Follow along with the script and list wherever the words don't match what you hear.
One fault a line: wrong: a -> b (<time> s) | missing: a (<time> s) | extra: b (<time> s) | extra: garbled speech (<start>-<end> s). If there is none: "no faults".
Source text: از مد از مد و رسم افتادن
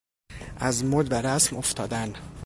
missing: از مد (1.1 s)